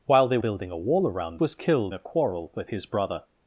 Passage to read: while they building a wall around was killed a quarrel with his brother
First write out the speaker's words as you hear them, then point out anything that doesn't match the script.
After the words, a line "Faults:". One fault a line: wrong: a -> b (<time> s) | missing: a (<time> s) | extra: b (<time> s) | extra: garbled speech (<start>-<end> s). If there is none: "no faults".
while they building a wall around was killed a quarrel with his brother
Faults:
no faults